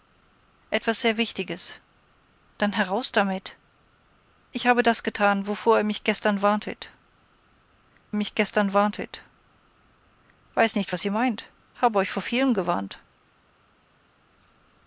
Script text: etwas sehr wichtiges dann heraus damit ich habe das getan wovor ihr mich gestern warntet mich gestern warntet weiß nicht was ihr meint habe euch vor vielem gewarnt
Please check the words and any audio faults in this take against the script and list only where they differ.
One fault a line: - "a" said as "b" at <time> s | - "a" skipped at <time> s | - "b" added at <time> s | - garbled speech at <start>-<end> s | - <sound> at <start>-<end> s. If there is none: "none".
none